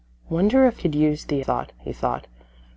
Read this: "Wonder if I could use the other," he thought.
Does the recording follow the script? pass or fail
fail